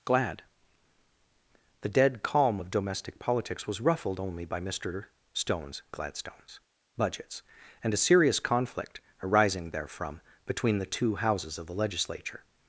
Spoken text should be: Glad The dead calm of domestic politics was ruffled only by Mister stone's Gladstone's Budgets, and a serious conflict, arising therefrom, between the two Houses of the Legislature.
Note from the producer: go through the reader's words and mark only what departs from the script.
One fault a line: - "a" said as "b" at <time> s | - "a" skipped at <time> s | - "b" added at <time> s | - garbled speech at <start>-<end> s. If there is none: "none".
none